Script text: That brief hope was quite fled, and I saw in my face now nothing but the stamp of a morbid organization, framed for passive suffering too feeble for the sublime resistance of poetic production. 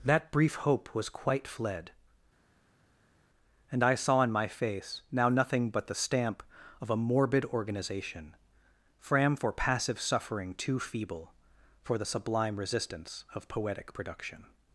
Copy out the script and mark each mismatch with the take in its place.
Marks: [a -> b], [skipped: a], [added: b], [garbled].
That brief hope was quite fled, and I saw in my face now nothing but the stamp of a morbid organization, [framed -> fram] for passive suffering too feeble for the sublime resistance of poetic production.